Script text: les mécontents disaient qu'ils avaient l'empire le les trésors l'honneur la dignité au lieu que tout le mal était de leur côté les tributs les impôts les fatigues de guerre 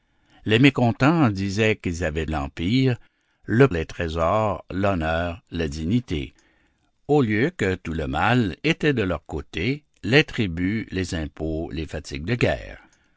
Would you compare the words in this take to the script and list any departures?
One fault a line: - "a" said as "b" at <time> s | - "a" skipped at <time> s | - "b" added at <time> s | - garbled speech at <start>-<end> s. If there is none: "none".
none